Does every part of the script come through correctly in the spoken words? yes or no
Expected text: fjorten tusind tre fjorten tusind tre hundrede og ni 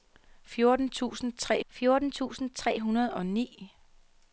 yes